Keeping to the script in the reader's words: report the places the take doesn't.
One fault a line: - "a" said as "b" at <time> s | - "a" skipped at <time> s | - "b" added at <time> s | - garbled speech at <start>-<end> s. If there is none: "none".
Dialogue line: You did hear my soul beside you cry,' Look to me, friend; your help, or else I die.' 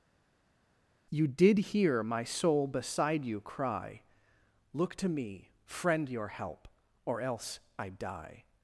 none